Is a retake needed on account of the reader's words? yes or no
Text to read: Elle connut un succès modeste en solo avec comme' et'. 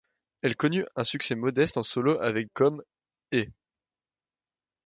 no